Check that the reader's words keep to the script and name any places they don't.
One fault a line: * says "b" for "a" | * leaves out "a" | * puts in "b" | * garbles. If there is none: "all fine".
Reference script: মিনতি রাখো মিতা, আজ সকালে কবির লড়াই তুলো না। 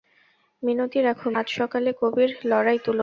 * leaves out "মিতা"